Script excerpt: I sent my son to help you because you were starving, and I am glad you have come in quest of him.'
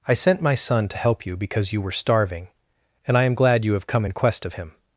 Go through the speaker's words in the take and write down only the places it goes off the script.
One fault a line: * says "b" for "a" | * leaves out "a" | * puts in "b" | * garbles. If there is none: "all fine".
all fine